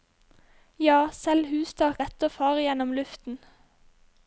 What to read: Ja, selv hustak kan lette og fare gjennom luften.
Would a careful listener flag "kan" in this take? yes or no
yes